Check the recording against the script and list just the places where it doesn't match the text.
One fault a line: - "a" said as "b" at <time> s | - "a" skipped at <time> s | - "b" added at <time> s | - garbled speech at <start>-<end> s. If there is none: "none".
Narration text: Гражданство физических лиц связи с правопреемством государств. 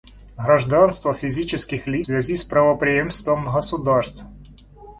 none